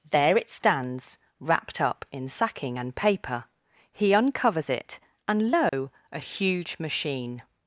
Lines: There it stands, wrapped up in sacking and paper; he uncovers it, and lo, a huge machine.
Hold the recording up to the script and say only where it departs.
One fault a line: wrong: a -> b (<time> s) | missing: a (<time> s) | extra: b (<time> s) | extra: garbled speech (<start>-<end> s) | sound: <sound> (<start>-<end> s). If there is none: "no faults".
sound: dropout (5.7-5.7 s)